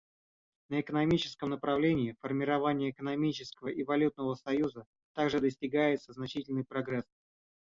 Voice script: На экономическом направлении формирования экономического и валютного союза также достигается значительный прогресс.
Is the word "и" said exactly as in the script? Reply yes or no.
yes